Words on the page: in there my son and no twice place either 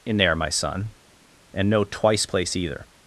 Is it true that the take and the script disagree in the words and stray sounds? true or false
false